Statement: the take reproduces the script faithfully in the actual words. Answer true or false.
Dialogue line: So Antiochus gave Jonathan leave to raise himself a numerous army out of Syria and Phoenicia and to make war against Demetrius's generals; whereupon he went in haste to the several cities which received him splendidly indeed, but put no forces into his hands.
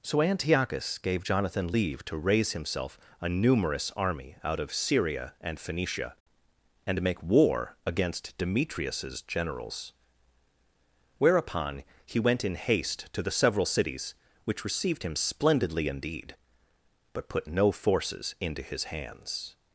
true